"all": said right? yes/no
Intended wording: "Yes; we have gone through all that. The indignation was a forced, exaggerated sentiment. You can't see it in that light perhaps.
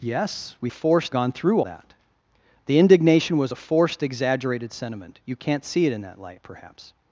no